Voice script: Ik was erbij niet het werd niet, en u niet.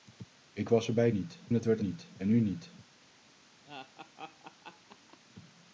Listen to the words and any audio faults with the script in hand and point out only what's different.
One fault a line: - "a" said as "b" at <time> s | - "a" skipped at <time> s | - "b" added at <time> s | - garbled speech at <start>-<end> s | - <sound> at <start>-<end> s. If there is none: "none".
- laugh at 3.7-5.2 s